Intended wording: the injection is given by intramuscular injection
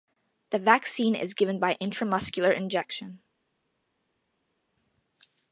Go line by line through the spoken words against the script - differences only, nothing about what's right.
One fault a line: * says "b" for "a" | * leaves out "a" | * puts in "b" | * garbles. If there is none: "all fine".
* says "vaccine" for "injection"